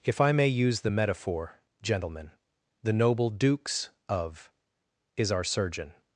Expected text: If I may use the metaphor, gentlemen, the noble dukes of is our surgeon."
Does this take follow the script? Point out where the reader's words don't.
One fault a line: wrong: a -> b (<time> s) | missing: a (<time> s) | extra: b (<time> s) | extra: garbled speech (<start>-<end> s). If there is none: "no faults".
no faults